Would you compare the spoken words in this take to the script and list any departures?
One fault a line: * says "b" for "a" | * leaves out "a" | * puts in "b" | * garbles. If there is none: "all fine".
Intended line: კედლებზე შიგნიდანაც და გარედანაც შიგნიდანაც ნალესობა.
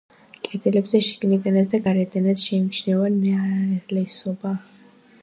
* says "შეიმჩნევა" for "შიგნიდანაც"